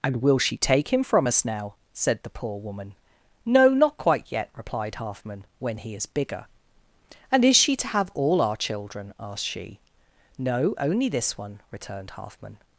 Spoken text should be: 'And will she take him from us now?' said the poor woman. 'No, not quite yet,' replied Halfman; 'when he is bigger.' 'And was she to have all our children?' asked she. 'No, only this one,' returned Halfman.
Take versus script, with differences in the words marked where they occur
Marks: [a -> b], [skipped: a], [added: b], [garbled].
'And will she take him from us now?' said the poor woman. 'No, not quite yet,' replied Halfman; 'when he is bigger.' 'And [was -> is] she to have all our children?' asked she. 'No, only this one,' returned Halfman.